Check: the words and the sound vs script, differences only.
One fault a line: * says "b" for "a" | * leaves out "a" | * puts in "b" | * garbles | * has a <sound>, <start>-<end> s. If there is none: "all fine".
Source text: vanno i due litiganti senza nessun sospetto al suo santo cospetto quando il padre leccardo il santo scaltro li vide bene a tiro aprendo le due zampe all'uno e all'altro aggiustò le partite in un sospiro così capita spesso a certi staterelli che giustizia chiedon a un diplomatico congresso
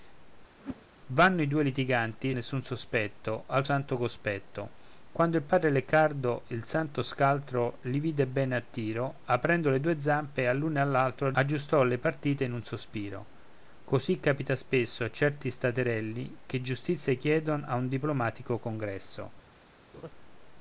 * has a whoosh, 0.6-0.9 s
* leaves out "senza"
* leaves out "suo"
* has a laugh, 19.9-20.1 s